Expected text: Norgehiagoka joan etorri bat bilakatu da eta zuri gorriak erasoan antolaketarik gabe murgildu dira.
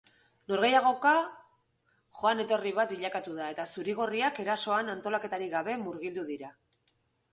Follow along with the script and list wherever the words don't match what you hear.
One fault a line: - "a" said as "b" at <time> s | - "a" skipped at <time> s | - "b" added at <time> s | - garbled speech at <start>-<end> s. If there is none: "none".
none